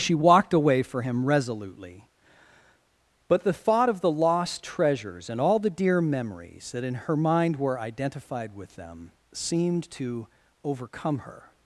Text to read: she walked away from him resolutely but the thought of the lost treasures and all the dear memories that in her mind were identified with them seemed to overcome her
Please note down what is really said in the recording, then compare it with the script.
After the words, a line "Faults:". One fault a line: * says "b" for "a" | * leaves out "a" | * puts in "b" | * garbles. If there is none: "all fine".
she walked away for him resolutely but the thought of the lost treasures and all the dear memories that in her mind were identified with them seemed to overcome her
Faults:
* says "for" for "from"